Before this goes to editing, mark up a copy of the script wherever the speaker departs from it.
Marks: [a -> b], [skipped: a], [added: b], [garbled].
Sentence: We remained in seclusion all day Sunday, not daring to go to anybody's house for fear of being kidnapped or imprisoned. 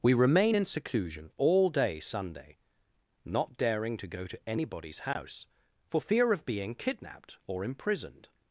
We [remained -> remain] in seclusion all day Sunday, not daring to go to anybody's house for fear of being kidnapped or imprisoned.